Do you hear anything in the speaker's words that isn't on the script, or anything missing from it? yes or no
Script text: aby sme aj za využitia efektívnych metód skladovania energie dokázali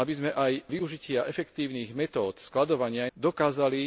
yes